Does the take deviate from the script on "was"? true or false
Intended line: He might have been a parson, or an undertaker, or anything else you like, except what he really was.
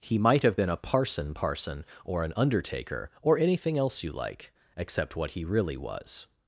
false